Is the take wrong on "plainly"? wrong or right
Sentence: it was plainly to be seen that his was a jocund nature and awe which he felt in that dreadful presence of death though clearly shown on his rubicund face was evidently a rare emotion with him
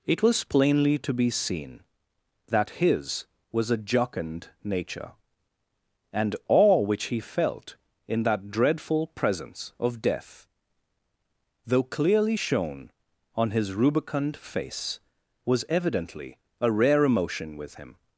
right